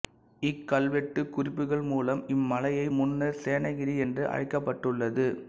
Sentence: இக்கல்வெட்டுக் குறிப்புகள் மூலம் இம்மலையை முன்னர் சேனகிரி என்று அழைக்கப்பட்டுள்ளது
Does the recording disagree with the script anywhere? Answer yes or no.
no